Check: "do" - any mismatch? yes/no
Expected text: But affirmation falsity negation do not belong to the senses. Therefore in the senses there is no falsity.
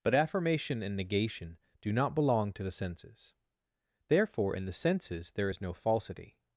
no